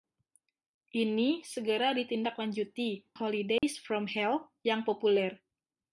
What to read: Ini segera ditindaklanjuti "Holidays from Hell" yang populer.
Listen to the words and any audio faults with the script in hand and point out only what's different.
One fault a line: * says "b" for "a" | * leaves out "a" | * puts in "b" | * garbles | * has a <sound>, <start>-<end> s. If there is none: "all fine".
* has a dropout, 3.6-3.6 s